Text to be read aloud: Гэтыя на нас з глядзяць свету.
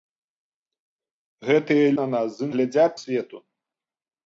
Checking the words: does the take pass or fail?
pass